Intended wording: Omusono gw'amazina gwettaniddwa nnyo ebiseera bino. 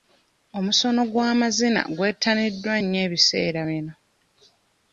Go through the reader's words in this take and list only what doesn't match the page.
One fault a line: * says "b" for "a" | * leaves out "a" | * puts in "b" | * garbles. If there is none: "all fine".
all fine